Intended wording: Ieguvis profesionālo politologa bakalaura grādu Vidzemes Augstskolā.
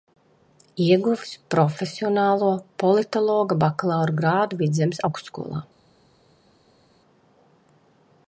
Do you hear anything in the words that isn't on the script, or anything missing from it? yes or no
no